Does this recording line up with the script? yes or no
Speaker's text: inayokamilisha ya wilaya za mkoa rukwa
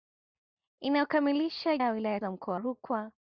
yes